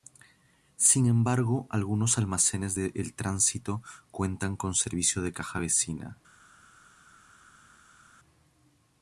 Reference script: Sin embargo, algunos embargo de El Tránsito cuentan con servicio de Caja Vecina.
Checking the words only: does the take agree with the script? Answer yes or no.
no